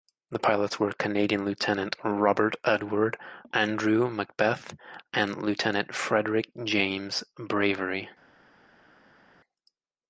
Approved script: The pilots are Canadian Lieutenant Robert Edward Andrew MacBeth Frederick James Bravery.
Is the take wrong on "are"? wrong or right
wrong